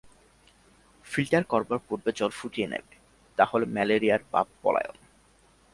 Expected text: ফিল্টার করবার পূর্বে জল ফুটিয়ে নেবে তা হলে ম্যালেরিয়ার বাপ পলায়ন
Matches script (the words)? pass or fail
pass